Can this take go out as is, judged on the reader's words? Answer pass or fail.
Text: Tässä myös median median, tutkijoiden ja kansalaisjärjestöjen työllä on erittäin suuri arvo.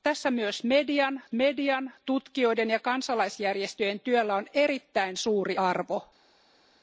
pass